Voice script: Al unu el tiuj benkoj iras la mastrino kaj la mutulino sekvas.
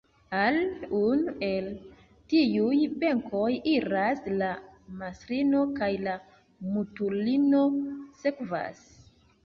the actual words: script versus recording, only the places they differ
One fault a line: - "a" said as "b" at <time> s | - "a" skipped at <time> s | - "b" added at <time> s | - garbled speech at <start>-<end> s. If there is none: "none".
none